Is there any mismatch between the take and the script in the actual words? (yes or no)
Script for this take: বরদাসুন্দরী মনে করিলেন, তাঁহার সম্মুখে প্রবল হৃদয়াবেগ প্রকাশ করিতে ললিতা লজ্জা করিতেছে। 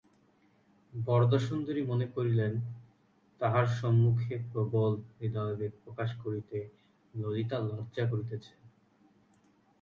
no